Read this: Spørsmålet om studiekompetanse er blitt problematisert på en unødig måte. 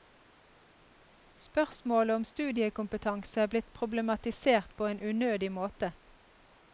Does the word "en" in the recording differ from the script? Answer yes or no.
no